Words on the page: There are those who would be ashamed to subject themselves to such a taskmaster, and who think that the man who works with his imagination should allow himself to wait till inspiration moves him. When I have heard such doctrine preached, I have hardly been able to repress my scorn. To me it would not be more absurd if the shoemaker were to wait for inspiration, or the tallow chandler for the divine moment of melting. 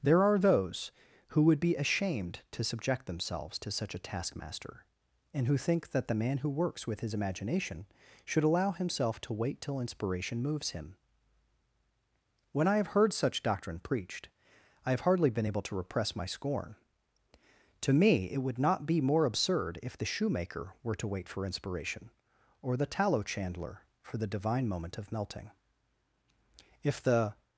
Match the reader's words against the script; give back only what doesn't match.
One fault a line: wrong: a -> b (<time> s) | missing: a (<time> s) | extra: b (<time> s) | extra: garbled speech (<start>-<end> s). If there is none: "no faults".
extra: If the (26.8 s)